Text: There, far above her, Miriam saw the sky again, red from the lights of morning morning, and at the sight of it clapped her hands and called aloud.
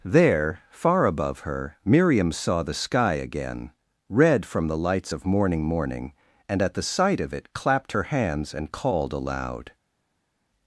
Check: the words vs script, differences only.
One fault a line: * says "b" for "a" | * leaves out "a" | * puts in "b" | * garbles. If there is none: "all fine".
all fine